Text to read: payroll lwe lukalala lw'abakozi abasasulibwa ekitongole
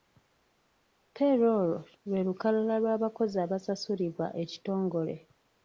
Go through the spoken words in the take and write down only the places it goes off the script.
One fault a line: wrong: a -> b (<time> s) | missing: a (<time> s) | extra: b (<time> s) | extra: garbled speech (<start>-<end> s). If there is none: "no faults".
no faults